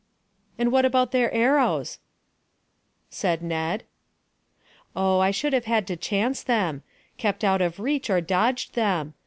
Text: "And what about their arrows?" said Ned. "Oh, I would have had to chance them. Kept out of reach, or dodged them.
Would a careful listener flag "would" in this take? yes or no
yes